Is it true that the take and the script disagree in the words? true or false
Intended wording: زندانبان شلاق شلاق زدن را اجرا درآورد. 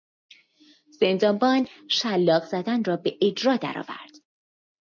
true